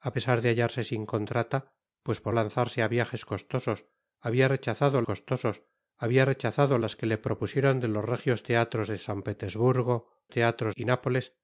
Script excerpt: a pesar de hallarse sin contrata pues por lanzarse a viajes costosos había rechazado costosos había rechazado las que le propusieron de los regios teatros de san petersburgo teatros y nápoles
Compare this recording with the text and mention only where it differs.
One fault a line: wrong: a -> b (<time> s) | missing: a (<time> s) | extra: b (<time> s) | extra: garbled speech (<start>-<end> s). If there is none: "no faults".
no faults